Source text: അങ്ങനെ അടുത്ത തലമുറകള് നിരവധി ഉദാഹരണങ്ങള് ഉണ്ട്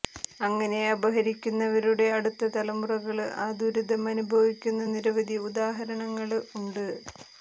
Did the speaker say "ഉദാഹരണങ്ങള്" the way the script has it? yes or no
yes